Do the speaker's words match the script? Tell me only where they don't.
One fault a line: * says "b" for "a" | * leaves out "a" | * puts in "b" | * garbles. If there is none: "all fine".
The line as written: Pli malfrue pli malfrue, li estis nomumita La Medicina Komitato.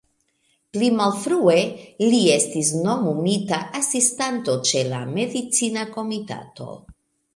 * leaves out "pli malfrue"
* puts in "Asistanto ĉe"